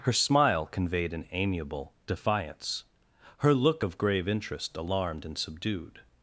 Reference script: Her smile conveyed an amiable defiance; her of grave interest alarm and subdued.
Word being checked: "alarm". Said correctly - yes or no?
no